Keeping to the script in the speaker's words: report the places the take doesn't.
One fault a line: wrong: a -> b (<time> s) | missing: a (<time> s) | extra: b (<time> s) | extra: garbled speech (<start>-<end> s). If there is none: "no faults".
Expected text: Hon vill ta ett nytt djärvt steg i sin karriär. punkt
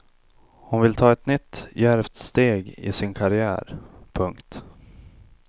no faults